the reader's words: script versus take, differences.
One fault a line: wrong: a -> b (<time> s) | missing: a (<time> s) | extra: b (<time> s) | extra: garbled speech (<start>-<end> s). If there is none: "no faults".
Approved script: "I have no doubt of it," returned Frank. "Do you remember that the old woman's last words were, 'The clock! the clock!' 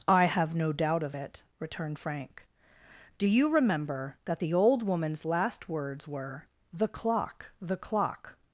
no faults